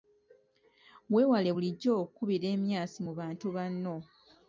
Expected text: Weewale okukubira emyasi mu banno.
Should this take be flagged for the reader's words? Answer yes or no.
yes